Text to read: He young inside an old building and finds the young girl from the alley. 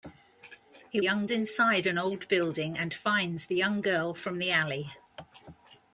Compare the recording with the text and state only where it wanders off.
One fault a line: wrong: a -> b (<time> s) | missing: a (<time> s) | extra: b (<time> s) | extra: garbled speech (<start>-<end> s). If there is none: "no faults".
no faults